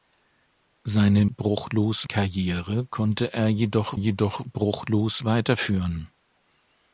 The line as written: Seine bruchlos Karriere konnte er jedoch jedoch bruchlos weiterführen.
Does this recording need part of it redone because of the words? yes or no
no